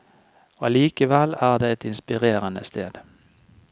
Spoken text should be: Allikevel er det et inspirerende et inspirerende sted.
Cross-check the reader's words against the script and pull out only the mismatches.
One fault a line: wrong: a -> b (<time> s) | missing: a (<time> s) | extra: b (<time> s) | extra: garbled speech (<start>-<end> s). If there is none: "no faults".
missing: et inspirerende (2.6 s)